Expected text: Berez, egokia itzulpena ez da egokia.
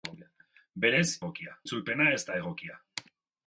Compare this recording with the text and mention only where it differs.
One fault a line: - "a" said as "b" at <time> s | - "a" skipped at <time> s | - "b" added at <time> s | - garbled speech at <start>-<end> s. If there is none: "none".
none